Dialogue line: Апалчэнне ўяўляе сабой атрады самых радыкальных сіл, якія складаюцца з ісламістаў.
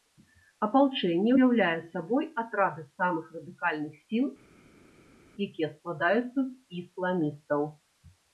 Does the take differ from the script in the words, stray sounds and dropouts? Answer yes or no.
no